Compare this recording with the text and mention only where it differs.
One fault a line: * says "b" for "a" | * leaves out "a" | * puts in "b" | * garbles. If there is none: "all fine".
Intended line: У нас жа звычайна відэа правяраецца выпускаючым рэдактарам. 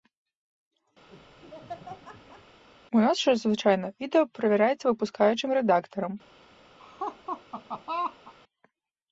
all fine